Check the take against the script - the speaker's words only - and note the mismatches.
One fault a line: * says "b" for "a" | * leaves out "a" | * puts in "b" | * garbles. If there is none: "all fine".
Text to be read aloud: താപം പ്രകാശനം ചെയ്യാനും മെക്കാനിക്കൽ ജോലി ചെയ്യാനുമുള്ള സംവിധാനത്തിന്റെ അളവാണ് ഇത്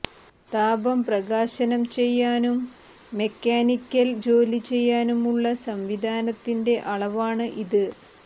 all fine